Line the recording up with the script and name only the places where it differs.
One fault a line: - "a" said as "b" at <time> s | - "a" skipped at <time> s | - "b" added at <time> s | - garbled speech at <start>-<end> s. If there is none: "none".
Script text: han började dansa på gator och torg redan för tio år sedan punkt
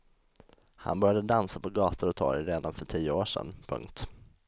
none